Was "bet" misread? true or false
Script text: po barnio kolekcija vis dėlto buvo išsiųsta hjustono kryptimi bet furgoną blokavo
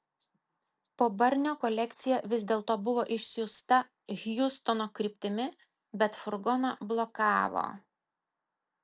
false